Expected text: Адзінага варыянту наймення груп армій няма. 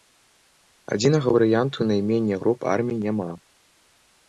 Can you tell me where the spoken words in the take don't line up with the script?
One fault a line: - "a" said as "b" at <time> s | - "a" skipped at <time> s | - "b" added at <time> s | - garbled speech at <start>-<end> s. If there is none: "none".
none